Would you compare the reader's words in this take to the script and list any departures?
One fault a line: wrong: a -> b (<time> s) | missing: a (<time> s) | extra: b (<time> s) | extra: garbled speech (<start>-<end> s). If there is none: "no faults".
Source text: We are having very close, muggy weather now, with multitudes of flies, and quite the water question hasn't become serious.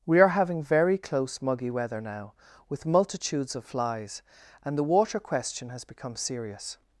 missing: quite (4.8 s)
wrong: hasn't -> has (5.7 s)